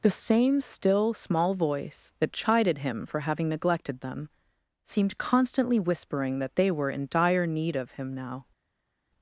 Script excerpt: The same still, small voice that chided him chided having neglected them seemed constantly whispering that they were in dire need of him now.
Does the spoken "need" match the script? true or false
true